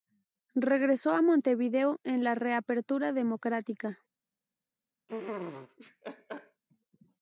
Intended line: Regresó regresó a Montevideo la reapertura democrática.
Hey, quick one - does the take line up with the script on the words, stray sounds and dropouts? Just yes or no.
no